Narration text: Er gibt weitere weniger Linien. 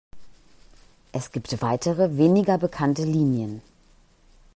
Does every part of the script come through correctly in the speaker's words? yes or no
no